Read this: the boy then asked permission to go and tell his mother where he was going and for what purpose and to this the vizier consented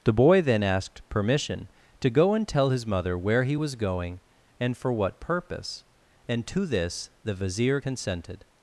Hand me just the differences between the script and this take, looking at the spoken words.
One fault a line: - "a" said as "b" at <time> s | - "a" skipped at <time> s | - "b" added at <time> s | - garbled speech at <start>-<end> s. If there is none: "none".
none